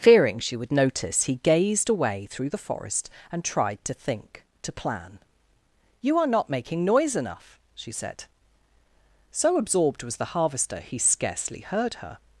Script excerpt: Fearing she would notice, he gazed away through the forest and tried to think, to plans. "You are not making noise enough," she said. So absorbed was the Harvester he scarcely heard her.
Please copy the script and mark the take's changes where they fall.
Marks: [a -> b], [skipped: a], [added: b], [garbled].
Fearing she would notice, he gazed away through the forest and tried to think, to [plans. -> plan] "You are not making noise enough," she said. So absorbed was the Harvester he scarcely heard her.